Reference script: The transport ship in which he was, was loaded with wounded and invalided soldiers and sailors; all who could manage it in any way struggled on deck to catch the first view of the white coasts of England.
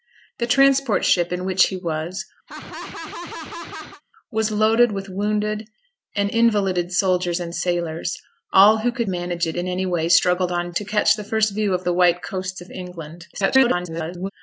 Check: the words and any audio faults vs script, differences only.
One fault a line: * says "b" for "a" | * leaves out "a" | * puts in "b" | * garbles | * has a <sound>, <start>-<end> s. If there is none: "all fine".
* has a laugh, 2.5-4.0 s
* leaves out "deck"
* garbles